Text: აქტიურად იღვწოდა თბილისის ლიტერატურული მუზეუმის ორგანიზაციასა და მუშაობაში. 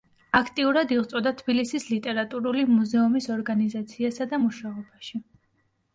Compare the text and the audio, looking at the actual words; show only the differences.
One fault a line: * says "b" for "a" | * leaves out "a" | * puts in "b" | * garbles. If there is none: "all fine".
all fine